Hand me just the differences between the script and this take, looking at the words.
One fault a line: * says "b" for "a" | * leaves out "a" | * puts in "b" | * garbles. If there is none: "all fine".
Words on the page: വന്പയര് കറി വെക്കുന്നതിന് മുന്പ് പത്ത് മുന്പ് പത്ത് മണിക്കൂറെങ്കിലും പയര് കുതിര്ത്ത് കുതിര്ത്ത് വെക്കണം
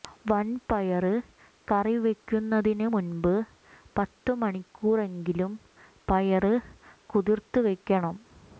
* leaves out "മുന്പ് പത്ത്"
* leaves out "കുതിര്ത്ത്"